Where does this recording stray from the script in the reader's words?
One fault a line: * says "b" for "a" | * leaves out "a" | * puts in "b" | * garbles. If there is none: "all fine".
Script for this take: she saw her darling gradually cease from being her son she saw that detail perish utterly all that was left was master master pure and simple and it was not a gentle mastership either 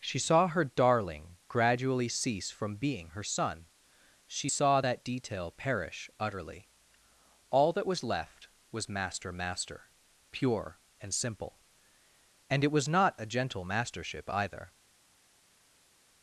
all fine